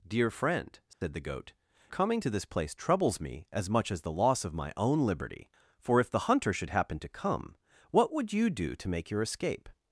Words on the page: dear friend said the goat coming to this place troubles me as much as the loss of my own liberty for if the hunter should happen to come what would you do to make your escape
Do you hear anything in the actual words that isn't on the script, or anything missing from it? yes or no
no